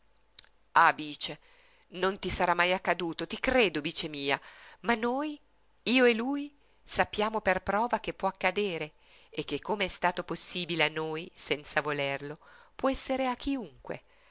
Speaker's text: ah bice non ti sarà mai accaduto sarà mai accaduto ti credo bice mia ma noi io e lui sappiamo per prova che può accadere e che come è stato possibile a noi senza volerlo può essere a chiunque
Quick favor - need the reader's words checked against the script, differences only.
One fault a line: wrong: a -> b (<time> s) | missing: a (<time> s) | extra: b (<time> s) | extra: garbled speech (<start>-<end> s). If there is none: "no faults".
missing: sarà mai accaduto (3.3 s)